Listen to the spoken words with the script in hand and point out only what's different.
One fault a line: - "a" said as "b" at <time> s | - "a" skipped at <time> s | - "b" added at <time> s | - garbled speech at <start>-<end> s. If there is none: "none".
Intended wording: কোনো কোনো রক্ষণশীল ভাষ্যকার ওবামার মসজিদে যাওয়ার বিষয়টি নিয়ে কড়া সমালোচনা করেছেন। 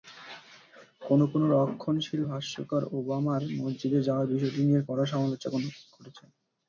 none